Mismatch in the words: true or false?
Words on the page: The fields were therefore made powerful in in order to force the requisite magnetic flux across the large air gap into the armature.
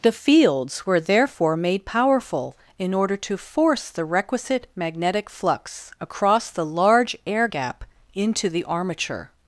true